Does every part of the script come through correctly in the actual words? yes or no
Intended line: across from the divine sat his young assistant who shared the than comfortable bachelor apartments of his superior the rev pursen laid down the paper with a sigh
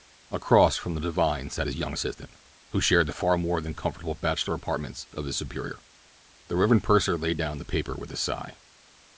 no